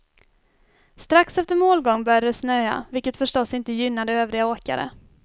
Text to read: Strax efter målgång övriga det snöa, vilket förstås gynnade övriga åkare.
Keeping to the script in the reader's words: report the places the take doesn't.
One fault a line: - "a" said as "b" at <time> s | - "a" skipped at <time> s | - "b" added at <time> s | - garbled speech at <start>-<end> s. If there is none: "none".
- "övriga" said as "började" at 2.0 s
- "inte" added at 3.5 s